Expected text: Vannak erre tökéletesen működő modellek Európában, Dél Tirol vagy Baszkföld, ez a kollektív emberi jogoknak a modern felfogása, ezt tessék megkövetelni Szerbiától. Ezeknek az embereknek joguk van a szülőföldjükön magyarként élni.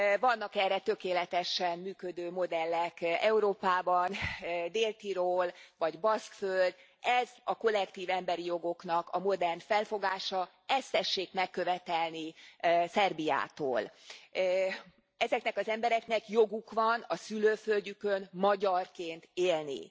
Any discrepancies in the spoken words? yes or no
no